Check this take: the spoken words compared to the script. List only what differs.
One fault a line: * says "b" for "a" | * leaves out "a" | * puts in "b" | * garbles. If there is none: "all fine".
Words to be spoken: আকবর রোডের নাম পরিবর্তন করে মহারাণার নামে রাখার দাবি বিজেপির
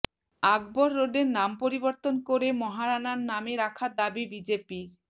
all fine